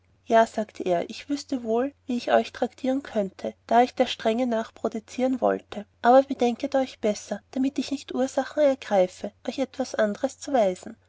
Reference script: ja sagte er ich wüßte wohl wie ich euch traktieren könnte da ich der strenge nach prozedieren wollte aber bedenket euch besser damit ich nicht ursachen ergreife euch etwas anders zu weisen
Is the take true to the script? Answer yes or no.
yes